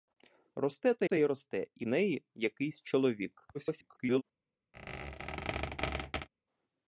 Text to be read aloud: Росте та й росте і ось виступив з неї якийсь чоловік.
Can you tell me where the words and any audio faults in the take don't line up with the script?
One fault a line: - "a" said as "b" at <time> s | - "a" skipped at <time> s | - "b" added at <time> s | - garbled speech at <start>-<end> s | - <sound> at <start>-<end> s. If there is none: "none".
- "та" added at 1.0 s
- "ось виступив з" skipped at 1.9 s
- garbled speech at 3.5-4.2 s
- squeak at 4.7-6.3 s